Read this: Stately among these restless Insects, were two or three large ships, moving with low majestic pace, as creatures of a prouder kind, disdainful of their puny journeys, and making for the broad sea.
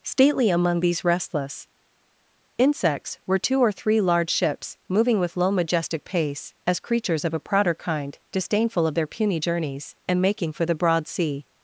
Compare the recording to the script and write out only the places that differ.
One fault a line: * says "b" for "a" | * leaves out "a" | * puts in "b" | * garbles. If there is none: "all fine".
all fine